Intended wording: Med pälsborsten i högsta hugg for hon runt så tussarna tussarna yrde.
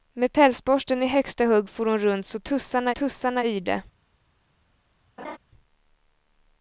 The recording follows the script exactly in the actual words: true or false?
true